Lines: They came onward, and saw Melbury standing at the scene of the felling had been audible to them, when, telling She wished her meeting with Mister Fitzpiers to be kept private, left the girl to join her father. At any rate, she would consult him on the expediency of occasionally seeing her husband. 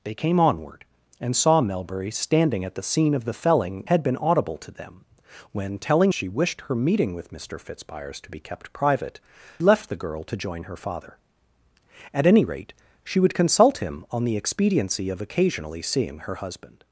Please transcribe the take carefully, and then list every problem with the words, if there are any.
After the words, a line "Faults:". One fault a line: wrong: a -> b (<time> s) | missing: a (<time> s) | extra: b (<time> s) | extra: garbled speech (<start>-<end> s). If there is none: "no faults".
They came onward, and saw Melbury standing at the scene of the felling had been audible to them, when, telling She wished her meeting with Mister Fitzpiers to be kept private, left the girl to join her father. At any rate, she would consult him on the expediency of occasionally seeing her husband.
Faults:
no faults